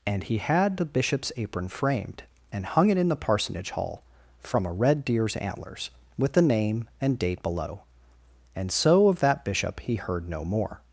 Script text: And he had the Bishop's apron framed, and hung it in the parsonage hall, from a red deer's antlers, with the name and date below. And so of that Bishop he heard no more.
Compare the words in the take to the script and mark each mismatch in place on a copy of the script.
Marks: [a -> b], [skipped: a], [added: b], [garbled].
And he had the Bishop's apron framed, and hung it in the parsonage hall, from a red deer's antlers, with the name and date below. And so of that Bishop he heard no more.